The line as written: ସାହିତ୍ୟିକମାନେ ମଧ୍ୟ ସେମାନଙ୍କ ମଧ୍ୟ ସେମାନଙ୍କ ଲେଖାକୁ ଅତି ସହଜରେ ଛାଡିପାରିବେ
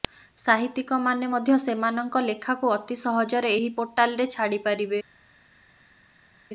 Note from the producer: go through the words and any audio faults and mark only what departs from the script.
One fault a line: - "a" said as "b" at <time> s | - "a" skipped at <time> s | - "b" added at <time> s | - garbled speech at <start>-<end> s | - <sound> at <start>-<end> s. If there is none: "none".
- "ମଧ୍ୟ ସେମାନଙ୍କ" skipped at 2.2 s
- "ଏହି ପୋର୍ଟାଲରେ" added at 3.6 s